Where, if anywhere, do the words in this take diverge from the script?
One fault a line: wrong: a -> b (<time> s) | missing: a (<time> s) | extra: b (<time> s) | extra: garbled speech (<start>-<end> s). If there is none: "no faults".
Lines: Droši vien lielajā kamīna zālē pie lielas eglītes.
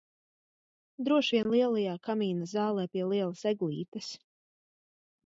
no faults